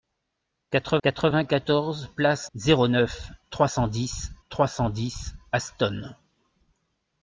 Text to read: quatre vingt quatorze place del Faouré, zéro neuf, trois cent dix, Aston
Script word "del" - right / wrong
wrong